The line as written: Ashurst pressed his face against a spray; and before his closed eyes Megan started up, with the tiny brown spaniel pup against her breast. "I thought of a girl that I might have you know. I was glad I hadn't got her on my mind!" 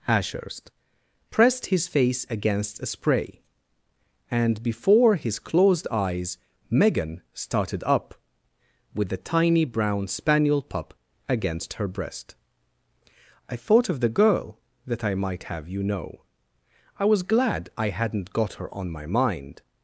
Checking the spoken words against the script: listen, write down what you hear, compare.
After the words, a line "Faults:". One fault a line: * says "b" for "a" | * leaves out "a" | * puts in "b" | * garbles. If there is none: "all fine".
Ashurst pressed his face against a spray; and before his closed eyes Megan started up, with the tiny brown spaniel pup against her breast. "I thought of the girl that I might have you know. I was glad I hadn't got her on my mind!"
Faults:
* says "the" for "a"